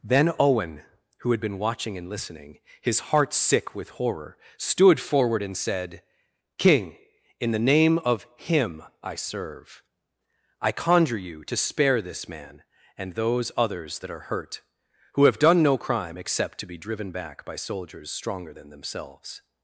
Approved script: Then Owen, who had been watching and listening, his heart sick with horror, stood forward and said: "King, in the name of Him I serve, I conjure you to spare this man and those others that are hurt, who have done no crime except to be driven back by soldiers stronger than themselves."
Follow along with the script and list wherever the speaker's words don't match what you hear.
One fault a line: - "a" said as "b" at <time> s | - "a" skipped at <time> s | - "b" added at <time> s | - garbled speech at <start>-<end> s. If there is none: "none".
none